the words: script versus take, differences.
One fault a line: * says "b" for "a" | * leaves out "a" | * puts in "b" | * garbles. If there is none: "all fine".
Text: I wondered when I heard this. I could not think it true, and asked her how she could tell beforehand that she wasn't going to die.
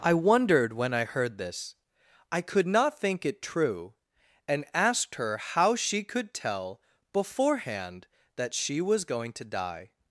* says "was" for "wasn't"